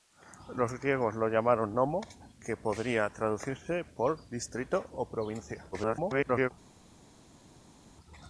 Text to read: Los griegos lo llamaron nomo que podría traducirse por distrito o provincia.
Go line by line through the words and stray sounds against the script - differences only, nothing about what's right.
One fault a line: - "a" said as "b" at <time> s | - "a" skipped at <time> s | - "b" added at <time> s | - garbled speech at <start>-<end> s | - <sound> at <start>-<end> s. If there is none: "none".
- garbled speech at 5.7-6.5 s